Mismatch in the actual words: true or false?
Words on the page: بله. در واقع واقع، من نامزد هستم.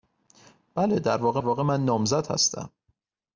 false